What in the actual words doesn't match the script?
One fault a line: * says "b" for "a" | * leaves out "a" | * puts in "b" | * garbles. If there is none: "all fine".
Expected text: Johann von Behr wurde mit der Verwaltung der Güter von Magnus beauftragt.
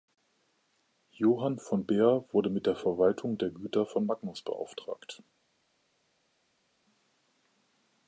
all fine